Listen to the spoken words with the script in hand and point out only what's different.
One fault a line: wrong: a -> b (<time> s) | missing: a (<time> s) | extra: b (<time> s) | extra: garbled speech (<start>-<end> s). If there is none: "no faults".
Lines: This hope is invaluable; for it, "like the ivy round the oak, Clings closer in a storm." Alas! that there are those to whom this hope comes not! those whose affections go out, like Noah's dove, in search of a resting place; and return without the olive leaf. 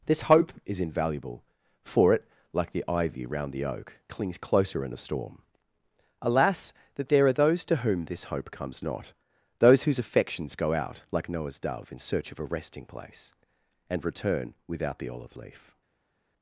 no faults